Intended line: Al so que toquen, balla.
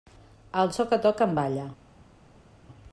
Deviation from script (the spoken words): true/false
false